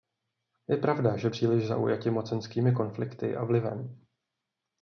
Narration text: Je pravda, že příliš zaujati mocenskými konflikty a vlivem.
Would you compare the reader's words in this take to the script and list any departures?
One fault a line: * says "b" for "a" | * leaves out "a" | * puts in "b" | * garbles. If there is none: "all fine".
all fine